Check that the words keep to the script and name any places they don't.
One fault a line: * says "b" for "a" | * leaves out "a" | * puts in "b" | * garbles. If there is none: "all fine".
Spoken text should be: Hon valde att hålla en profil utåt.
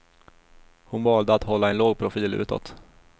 * puts in "låg"